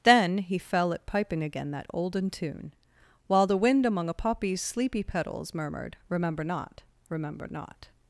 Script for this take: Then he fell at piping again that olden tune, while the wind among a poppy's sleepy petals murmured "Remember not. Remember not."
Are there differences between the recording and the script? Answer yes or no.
no